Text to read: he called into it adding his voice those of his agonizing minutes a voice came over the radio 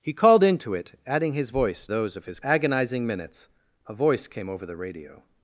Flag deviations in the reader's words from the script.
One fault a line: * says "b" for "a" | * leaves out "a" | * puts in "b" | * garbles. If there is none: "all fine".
all fine